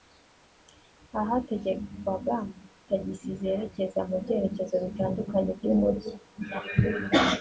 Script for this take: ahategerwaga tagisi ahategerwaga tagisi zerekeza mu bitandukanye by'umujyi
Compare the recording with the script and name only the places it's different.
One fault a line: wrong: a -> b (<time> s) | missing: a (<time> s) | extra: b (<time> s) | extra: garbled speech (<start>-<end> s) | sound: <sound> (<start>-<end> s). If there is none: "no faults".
missing: ahategerwaga tagisi (3.3 s)
extra: byerekezo (4.2 s)